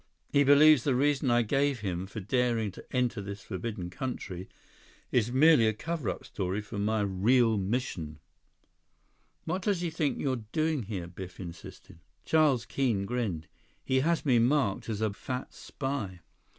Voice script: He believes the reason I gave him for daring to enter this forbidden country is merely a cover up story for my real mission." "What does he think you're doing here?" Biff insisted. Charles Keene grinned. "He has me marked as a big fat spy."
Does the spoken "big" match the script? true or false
false